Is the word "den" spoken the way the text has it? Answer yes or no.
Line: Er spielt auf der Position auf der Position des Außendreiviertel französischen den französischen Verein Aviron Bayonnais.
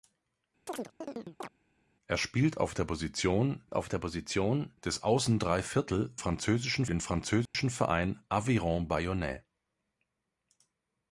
yes